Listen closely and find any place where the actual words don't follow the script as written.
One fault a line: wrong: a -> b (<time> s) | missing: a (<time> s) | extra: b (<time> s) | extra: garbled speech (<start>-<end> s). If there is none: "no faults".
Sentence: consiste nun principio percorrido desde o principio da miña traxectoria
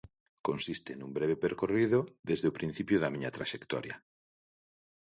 wrong: principio -> breve (1.2 s)